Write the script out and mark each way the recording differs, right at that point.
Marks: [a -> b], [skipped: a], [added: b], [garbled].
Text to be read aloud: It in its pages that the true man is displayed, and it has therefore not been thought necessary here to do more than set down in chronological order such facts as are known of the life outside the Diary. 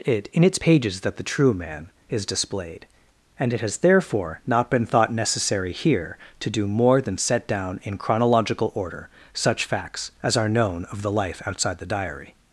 It in its pages that the true man is displayed, and it has therefore not been thought necessary here to do more than set down in chronological order such facts as are known of the life outside the Diary.